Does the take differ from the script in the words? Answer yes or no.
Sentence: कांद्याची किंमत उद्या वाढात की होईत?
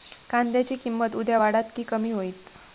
yes